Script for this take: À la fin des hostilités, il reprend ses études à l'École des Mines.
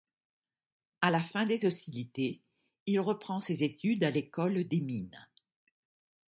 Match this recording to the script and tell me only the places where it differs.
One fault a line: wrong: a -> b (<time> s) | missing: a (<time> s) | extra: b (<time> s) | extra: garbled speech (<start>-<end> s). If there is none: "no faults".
no faults